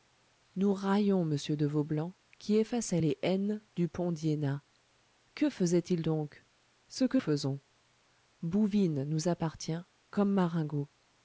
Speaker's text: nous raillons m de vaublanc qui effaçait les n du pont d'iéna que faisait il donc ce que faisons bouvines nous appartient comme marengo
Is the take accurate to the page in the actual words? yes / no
yes